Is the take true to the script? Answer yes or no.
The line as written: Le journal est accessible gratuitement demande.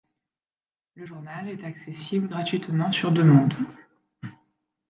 no